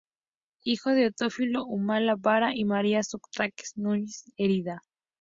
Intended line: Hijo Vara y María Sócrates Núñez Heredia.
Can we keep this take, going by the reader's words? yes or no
no